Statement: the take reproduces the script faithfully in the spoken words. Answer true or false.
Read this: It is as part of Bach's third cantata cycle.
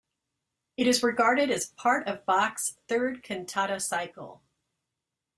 false